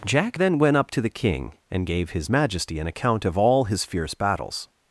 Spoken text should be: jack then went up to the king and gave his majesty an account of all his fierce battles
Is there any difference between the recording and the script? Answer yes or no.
no